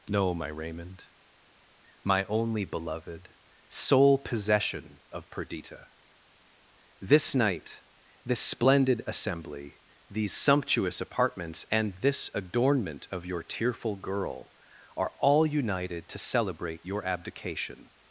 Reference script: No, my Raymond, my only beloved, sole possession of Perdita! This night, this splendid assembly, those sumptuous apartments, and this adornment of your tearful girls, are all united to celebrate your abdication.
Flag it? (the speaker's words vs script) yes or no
yes